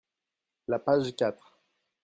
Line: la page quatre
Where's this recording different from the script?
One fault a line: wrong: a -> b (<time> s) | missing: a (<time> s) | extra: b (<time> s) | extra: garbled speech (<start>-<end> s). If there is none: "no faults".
no faults